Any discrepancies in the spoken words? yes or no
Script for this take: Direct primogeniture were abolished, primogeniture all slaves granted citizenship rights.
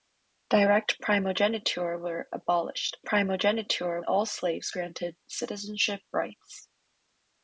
no